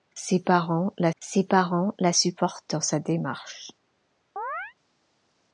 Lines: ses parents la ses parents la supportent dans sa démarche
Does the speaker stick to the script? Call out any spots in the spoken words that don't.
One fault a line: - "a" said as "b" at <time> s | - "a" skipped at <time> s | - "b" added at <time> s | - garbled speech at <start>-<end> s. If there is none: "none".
none